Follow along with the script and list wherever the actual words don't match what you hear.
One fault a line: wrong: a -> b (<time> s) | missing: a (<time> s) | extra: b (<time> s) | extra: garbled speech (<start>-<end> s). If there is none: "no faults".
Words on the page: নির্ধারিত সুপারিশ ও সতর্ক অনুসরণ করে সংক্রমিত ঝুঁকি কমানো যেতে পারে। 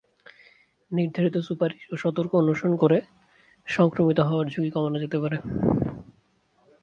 extra: হওয়ার (4.2 s)